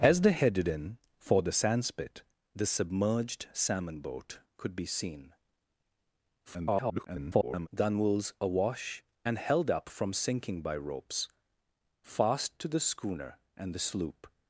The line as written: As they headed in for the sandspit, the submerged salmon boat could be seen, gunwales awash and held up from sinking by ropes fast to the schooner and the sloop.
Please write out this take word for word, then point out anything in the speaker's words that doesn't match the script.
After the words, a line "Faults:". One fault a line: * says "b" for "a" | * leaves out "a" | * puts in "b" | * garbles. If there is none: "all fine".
As they headed in for the sandspit, the submerged salmon boat could be seen, [garbled] gunwales awash and held up from sinking by ropes fast to the schooner and the sloop.
Faults:
* garbles